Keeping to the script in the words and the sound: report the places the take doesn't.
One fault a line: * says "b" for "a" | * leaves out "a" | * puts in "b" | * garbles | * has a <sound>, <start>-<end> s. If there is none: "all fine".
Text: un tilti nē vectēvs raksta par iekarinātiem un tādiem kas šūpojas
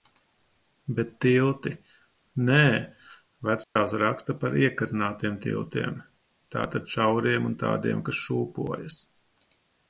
* says "bet" for "un"
* has a dropout, 3.6-3.8 s
* puts in "tiltiem tātad šauriem"